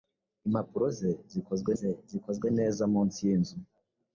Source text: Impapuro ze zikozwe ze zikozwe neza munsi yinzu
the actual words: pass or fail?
pass